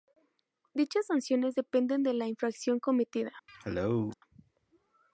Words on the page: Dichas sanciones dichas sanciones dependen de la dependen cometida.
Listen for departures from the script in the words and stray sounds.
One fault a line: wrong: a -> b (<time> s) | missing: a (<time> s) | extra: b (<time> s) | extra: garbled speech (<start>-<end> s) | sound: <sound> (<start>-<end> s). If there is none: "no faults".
missing: dichas sanciones (1.6 s)
wrong: dependen -> infracción (2.3 s)
sound: cough (3.5-4.1 s)